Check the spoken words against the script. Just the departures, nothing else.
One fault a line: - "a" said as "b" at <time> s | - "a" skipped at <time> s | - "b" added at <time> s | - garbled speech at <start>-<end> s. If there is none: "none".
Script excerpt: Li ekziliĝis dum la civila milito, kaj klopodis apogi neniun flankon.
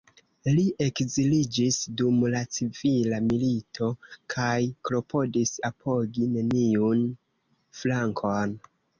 none